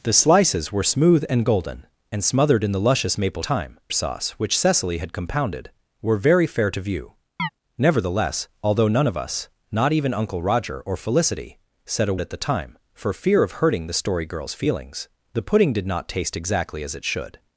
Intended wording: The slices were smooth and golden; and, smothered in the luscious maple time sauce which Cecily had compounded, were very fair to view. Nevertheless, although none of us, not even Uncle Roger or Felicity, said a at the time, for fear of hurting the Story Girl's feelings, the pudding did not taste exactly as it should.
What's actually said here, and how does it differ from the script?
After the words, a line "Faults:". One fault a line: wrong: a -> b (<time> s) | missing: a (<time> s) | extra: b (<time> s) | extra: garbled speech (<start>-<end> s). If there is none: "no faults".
The slices were smooth and golden; and, smothered in the luscious maple time sauce which Cecily had compounded, were very fair to view. Nevertheless, although none of us, not even Uncle Roger or Felicity, said a at the time, for fear of hurting the Story Girl's feelings, the pudding did not taste exactly as it should.
Faults:
no faults